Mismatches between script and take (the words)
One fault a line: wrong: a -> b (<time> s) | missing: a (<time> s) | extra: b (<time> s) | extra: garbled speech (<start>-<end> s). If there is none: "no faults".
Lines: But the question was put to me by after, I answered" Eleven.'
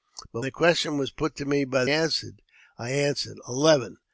no faults